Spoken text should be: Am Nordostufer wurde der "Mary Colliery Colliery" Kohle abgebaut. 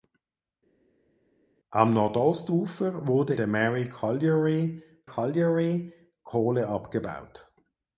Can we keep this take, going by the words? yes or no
yes